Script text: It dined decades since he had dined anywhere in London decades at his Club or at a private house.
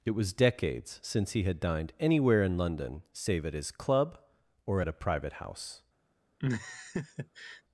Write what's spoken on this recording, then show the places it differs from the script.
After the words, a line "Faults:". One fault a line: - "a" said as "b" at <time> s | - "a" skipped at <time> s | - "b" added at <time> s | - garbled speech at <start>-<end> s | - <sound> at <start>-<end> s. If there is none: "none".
It was decades since he had dined anywhere in London save at his Club or at a private house.
Faults:
- "dined" said as "was" at 0.1 s
- "decades" said as "save" at 3.1 s
- laugh at 6.4-7.6 s